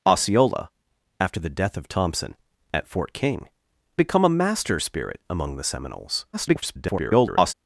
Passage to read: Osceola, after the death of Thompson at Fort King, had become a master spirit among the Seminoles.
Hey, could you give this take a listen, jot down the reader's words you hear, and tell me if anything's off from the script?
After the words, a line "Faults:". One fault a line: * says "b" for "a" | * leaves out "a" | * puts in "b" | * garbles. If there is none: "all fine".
Osceola, after the death of Thompson at Fort King, become a master spirit among the Seminoles. [garbled]
Faults:
* leaves out "had"
* garbles